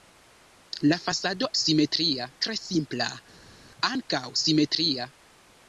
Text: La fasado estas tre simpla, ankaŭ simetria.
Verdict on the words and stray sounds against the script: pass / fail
fail